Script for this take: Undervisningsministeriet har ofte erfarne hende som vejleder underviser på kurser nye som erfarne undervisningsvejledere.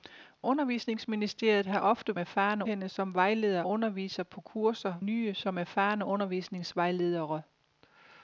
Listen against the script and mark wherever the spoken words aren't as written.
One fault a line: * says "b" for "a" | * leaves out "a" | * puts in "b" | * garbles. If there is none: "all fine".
all fine